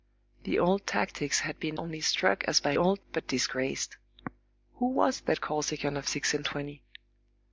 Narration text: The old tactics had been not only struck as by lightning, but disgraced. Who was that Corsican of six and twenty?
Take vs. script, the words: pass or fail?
fail